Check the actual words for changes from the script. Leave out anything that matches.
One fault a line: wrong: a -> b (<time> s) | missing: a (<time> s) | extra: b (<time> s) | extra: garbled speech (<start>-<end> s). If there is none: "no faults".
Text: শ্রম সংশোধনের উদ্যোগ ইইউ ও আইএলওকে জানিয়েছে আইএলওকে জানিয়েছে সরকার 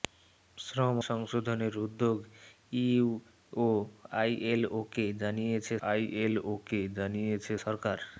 no faults